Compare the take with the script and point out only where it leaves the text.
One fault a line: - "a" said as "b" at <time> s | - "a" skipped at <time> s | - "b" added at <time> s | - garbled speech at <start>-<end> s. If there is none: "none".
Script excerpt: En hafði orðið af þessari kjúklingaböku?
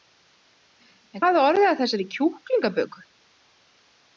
none